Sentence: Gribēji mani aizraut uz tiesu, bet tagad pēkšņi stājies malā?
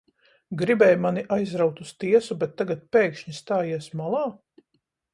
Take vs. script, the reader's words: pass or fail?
pass